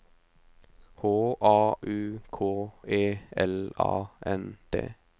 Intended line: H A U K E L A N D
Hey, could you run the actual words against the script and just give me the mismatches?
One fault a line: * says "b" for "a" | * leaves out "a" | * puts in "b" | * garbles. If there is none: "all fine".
all fine